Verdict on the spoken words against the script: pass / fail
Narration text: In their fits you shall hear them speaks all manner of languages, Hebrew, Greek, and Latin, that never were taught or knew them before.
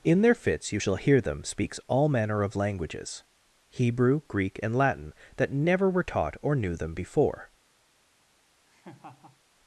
pass